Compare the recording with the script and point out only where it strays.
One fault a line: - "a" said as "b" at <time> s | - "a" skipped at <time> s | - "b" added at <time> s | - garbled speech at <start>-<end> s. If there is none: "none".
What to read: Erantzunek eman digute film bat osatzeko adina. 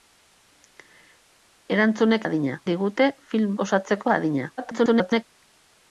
- "eman" said as "adina" at 2.3 s
- "bat" skipped at 3.5 s
- garbled speech at 4.6-5.2 s